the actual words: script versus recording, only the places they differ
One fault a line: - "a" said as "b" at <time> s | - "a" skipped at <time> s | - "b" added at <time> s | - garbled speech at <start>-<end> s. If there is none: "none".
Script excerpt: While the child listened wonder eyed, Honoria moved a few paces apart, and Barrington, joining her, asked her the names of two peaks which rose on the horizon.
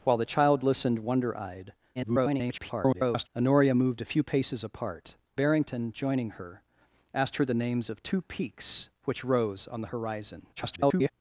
- garbled speech at 2.0-3.3 s
- "and" skipped at 5.2 s
- garbled speech at 10.6-11.1 s